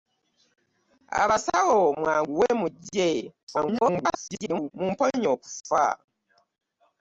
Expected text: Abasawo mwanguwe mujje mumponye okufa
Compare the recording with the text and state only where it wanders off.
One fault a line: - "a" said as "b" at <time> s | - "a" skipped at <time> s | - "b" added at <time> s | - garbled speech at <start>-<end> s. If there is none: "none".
- garbled speech at 3.4-4.7 s